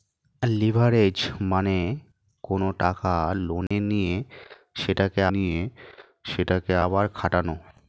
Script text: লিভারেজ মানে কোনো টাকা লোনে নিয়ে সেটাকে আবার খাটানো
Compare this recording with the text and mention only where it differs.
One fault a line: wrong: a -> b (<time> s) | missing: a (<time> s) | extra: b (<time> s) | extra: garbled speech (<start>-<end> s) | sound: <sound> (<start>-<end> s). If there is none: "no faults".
sound: dropout (3.7-3.7 s)
extra: নিয়ে সেটাকে (5.3 s)